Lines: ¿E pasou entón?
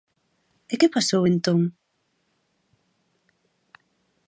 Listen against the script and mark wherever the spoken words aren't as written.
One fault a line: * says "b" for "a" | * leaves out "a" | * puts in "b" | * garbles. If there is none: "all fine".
* puts in "que"